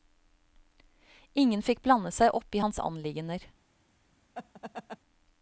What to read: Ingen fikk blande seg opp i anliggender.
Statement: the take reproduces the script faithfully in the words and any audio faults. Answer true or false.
false